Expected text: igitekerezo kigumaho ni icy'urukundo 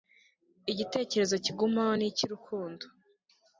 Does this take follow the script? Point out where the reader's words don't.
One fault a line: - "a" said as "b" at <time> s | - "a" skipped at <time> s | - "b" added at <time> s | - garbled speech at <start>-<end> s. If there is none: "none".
none